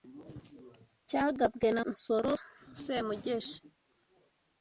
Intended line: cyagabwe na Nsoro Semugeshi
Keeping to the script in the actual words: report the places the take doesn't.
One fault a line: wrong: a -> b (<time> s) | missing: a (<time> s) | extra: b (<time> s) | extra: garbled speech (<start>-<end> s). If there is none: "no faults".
no faults